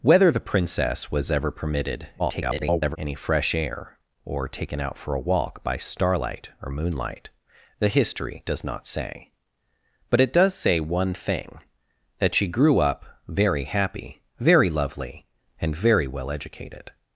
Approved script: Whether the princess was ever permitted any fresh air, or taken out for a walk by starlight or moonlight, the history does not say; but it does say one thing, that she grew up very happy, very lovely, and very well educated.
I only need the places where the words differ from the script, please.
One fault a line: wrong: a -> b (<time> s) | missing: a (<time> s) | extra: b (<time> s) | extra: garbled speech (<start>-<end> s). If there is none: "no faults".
extra: garbled speech (2.2-3.0 s)